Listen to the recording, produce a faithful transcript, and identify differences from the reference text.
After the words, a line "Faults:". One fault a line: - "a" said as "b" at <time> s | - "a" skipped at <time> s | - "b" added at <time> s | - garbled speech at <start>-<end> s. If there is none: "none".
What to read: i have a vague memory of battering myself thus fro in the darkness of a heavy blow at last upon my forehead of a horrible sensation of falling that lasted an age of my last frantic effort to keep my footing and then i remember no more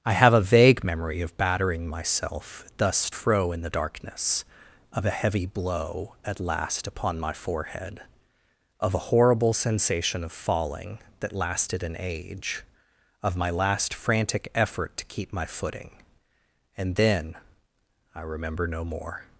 i have a vague memory of battering myself thus fro in the darkness of a heavy blow at last upon my forehead of a horrible sensation of falling that lasted an age of my last frantic effort to keep my footing and then i remember no more
Faults:
none